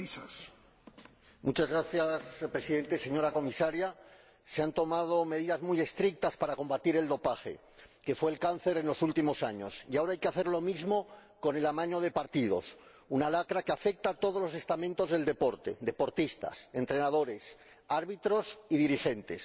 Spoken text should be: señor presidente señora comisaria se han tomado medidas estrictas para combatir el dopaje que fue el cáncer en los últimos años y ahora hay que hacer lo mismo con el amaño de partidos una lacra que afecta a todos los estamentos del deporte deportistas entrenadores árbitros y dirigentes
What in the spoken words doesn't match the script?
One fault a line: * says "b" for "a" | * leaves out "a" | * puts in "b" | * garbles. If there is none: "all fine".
* puts in "muy"